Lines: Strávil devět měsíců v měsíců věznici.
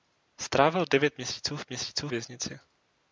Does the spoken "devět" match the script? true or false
true